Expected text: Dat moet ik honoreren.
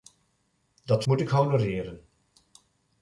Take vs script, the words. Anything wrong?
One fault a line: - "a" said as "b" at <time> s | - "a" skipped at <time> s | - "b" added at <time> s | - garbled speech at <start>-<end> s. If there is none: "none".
none